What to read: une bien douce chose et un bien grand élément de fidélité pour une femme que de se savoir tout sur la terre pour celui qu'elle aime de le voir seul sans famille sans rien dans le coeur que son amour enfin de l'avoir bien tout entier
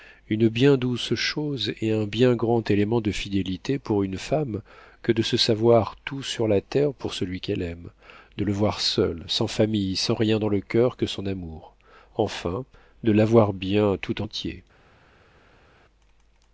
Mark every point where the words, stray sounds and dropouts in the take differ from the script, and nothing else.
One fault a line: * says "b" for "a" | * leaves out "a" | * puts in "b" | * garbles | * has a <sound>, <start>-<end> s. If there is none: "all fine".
all fine